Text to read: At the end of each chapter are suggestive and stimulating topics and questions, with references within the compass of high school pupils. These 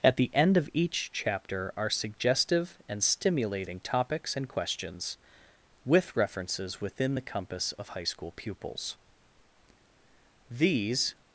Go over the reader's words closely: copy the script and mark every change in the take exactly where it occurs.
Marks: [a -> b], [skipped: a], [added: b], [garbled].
At the end of each chapter are suggestive and stimulating topics and questions, with references within the compass of high school pupils. These